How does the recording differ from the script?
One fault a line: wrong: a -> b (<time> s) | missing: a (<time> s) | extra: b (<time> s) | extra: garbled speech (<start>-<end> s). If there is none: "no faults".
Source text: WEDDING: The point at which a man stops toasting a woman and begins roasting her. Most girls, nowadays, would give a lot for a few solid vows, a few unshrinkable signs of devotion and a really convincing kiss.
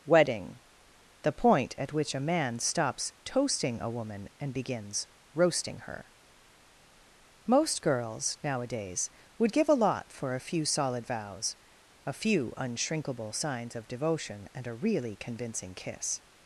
no faults